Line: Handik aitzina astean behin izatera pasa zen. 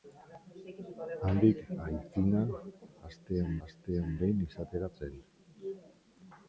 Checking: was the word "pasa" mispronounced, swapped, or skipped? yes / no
yes